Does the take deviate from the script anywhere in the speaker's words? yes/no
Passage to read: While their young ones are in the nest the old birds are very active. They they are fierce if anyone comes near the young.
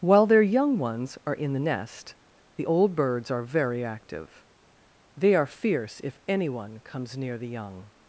yes